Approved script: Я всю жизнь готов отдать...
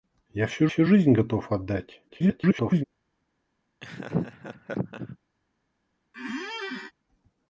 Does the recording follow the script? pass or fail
fail